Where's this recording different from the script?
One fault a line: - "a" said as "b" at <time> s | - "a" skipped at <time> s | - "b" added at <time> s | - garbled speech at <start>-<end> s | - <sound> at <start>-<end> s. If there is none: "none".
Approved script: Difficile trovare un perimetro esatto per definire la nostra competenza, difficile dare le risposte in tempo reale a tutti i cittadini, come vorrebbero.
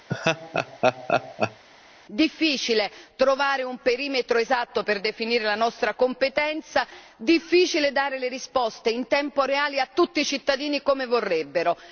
- laugh at 0.1-1.6 s